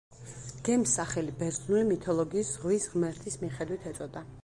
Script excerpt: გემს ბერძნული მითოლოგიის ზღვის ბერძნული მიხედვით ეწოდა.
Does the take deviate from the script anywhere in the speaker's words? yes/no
yes